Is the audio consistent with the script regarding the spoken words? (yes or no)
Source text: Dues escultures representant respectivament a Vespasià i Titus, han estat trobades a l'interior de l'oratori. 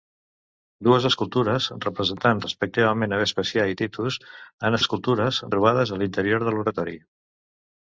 no